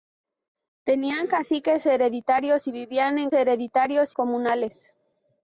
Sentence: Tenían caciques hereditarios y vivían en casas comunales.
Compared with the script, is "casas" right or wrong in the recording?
wrong